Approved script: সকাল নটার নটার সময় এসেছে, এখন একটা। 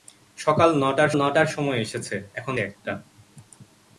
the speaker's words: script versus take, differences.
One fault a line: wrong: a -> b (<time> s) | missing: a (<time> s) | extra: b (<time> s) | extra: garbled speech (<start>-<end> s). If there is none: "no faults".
no faults